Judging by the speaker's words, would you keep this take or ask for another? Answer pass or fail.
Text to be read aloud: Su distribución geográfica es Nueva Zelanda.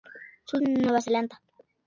fail